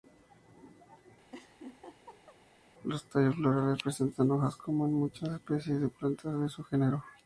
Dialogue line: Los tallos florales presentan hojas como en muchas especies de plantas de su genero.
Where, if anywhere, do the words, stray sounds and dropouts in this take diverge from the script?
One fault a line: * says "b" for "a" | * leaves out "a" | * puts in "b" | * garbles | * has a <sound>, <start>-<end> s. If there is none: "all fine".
* has a laugh, 1.3-2.4 s